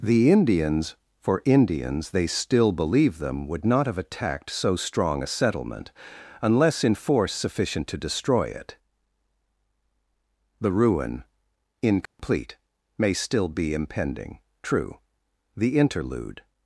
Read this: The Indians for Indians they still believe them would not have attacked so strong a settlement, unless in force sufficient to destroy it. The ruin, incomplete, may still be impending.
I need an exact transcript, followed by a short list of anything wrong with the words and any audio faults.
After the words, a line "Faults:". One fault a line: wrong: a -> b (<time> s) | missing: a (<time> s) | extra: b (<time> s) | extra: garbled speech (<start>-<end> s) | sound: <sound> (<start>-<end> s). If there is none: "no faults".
The Indians for Indians they still believe them would not have attacked so strong a settlement, unless in force sufficient to destroy it. The ruin, incomplete, may still be impending. True, the interlude
Faults:
sound: dropout (12.1-12.2 s)
extra: True the interlude (14.6 s)